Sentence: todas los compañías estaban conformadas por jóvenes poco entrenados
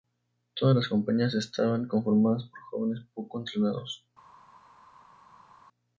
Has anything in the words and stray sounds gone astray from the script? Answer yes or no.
yes